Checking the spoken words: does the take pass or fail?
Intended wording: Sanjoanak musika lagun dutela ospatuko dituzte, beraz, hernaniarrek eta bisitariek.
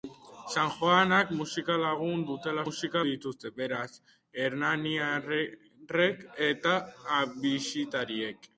fail